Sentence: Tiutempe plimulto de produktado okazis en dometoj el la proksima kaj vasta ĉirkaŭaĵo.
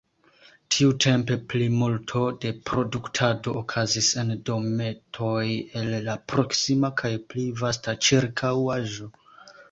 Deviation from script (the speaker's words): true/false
true